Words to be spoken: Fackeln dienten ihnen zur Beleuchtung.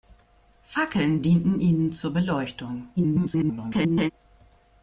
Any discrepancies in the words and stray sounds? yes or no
yes